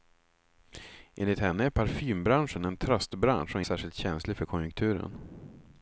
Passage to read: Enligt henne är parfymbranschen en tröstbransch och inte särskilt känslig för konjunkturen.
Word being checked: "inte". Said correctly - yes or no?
no